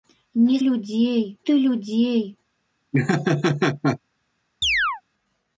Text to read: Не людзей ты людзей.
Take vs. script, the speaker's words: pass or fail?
pass